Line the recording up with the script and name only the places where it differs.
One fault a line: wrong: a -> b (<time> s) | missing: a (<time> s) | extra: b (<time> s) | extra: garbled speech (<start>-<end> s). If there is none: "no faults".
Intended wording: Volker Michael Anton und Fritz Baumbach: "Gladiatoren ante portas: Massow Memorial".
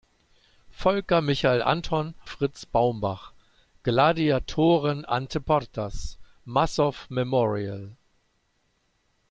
missing: und (2.1 s)